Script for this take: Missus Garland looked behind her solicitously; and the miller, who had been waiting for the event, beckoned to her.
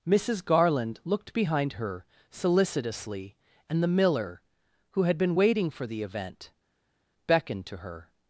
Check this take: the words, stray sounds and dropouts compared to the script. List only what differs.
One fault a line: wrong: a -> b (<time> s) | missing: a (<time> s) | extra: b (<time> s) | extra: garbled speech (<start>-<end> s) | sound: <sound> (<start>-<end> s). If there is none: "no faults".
no faults